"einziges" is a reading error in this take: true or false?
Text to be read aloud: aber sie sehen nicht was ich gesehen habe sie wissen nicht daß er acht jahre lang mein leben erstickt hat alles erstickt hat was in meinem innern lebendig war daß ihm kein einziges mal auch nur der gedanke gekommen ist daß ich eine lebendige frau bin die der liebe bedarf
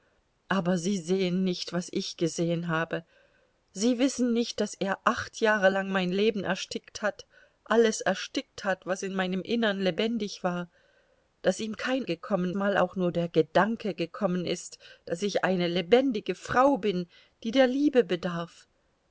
true